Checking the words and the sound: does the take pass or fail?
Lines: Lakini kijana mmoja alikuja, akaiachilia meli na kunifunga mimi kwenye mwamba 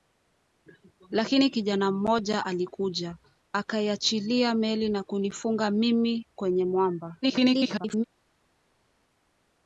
fail